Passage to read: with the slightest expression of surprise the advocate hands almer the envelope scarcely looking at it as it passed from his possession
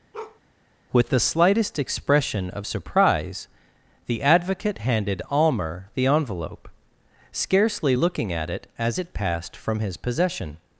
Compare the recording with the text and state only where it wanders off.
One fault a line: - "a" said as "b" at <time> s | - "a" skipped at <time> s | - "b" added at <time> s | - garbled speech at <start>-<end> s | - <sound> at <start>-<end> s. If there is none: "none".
- bark at 0.1-0.4 s
- "hands" said as "handed" at 4.8 s